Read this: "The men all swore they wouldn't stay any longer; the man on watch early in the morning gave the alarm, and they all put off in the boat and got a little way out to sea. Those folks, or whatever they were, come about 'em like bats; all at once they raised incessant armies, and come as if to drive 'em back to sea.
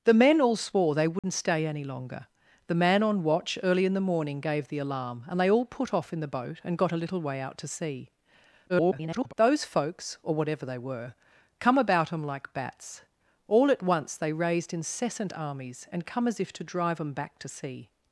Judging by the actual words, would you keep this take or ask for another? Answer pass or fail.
fail